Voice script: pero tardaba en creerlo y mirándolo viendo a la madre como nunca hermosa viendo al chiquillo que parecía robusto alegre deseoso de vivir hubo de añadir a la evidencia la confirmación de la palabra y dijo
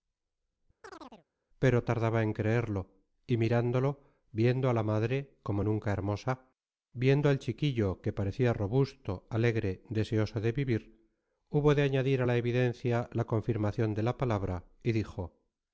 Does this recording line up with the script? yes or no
yes